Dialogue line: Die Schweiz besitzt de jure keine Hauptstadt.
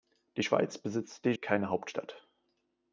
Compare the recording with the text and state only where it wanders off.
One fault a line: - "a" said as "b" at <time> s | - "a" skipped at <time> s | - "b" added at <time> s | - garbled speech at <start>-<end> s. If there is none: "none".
- "jure" skipped at 1.3 s